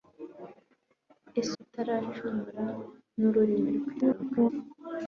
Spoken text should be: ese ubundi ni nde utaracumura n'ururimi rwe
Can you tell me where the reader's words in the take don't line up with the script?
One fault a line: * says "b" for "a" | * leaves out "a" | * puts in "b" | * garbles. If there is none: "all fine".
* leaves out "ubundi ni nde"
* garbles